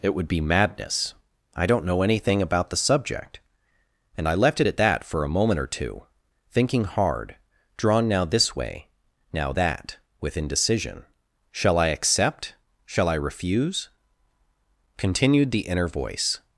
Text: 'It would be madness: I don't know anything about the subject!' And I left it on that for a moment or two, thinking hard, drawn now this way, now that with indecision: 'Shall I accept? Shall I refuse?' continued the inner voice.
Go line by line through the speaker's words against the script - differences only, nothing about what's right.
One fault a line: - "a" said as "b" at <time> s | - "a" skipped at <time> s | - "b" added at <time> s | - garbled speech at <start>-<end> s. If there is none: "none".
- "on" said as "at" at 4.6 s